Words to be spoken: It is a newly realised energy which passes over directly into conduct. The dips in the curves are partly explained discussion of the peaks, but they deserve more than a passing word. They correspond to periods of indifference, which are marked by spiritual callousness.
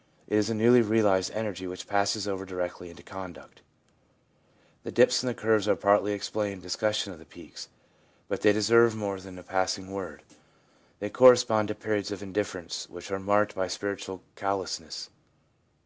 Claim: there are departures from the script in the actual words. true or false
false